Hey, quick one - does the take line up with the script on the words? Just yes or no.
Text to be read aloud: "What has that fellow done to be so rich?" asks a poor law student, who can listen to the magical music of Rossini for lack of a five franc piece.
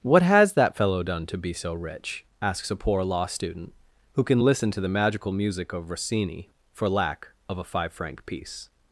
yes